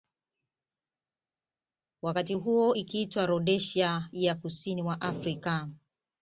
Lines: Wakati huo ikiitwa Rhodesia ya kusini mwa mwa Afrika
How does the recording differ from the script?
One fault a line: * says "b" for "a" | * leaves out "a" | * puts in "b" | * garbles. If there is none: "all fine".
* leaves out "mwa"